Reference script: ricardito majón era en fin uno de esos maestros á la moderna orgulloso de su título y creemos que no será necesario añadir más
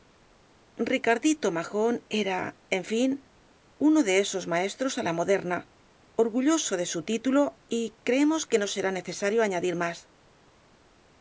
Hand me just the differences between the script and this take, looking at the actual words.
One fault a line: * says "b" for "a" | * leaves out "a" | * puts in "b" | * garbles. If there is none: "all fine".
all fine